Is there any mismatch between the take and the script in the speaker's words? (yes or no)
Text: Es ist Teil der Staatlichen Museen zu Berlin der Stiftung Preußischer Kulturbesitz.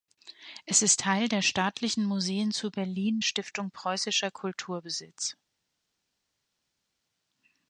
yes